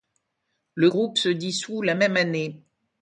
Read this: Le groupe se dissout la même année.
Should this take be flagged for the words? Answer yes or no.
no